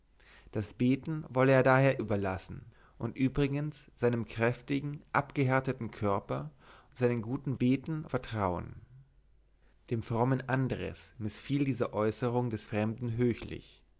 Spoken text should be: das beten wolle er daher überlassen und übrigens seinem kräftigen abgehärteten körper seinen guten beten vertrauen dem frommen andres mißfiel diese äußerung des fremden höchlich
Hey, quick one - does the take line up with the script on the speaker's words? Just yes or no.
yes